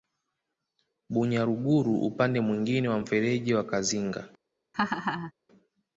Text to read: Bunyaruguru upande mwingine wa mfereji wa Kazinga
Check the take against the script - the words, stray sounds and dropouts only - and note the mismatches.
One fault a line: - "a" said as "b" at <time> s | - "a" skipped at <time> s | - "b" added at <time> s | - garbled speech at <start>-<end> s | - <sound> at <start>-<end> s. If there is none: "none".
- laugh at 4.7-5.3 s